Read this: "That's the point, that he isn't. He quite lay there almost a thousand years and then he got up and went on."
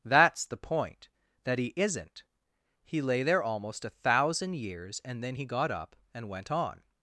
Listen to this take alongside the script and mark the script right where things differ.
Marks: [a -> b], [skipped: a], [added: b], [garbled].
"That's the point, that he isn't. He [skipped: quite] lay there almost a thousand years and then he got up and went on."